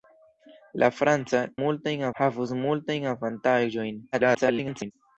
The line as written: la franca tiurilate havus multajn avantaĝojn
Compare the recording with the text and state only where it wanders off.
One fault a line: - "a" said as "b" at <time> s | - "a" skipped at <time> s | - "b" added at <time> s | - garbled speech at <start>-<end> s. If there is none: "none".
- "tiurilate" said as "multajn" at 1.6 s
- garbled speech at 4.1-4.9 s